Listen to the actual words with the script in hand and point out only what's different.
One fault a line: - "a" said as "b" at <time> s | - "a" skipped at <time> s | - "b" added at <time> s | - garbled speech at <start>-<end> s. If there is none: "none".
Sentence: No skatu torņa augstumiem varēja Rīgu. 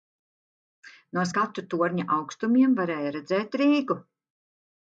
- "redzēt" added at 3.2 s